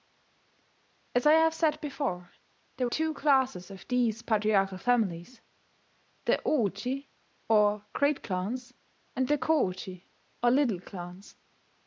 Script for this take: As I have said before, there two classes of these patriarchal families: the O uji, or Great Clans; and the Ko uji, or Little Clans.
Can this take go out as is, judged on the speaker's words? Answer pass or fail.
pass